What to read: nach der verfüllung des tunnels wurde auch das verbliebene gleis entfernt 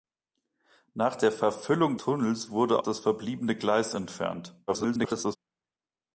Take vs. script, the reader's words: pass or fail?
fail